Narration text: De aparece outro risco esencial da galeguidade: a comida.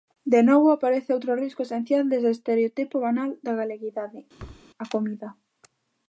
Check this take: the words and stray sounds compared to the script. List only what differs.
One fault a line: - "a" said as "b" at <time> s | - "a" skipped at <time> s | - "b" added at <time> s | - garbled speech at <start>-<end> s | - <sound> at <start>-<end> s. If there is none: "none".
- "novo" added at 0.5 s
- "dese estereotipo banal" added at 2.1 s
- thud at 4.4-4.7 s